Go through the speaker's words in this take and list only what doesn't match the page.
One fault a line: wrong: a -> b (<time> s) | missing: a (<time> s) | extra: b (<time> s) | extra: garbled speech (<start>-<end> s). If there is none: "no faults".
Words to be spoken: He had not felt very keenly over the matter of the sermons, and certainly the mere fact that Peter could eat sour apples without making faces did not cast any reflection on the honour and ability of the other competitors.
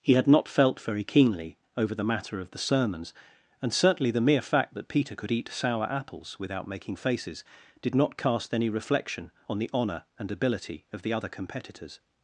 no faults